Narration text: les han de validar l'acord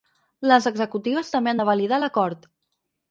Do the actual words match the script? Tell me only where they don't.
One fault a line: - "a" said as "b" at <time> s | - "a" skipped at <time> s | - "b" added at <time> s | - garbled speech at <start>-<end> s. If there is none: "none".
- "executives també" added at 0.7 s